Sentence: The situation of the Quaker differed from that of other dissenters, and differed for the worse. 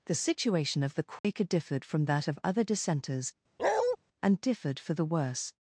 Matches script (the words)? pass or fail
pass